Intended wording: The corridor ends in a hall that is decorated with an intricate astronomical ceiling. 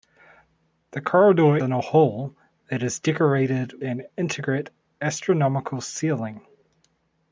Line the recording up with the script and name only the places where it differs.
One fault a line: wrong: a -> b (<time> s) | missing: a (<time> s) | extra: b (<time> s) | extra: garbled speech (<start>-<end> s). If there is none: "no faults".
missing: ends (1.6 s)
missing: with (3.8 s)